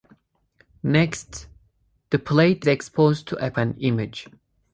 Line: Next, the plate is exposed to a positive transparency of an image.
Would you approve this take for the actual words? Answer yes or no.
no